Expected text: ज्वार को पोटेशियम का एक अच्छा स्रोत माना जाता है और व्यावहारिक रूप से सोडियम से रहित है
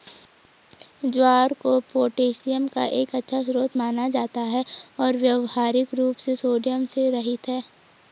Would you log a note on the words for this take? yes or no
no